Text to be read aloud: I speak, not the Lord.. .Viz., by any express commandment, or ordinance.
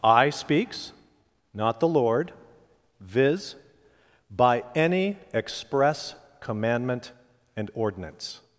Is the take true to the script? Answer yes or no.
no